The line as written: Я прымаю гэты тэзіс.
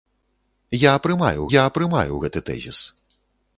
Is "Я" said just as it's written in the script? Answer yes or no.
yes